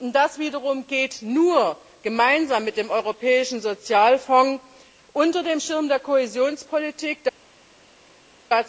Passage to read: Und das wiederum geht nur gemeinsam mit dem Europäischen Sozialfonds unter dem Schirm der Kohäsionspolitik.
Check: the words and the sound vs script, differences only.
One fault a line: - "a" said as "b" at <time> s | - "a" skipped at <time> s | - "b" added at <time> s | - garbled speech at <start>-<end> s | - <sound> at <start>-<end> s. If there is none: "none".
none